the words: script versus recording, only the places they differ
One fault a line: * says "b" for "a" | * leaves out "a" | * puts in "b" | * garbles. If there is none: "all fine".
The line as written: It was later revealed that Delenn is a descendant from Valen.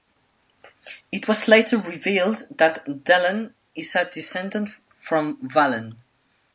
all fine